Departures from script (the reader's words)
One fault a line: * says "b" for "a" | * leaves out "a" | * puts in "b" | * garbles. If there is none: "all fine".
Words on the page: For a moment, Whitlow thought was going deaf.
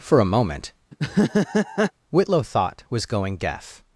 all fine